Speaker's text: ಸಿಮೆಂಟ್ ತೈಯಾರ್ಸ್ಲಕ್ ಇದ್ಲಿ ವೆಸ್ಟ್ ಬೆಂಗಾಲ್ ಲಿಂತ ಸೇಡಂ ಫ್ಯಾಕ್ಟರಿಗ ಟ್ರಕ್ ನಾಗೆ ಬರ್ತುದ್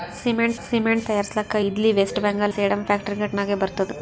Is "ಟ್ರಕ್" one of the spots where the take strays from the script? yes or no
yes